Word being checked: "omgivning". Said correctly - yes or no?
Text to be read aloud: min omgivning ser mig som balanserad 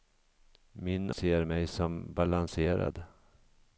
no